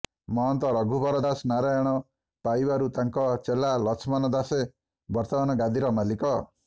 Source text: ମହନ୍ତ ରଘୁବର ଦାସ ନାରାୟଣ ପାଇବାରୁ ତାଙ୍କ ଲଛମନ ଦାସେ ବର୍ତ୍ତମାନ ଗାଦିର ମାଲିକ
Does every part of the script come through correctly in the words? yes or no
no